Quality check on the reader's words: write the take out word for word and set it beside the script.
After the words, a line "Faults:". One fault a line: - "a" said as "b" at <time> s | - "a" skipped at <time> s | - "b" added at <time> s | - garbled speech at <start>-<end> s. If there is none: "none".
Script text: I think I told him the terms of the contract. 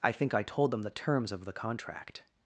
I think I told them the terms of the contract.
Faults:
- "him" said as "them" at 0.7 s